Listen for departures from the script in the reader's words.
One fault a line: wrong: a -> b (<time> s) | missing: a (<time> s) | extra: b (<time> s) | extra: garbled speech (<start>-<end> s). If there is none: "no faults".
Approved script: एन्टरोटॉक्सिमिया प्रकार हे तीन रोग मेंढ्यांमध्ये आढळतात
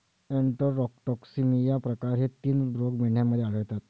no faults